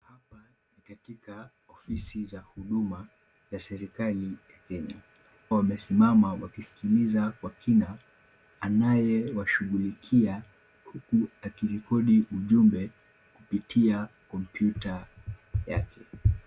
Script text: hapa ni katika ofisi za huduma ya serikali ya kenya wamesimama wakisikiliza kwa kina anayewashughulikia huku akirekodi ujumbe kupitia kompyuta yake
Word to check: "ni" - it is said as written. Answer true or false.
true